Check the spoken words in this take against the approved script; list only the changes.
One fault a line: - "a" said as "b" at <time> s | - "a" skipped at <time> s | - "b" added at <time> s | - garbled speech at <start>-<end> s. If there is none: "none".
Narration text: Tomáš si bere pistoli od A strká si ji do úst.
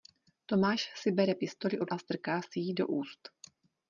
none